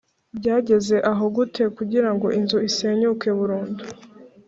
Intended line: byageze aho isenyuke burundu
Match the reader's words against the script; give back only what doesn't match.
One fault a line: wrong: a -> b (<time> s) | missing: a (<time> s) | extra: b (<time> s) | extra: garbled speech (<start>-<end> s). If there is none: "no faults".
extra: gute kugirango inzu (1.3 s)